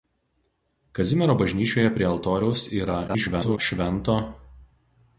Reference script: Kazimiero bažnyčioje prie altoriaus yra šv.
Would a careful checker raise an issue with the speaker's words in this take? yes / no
yes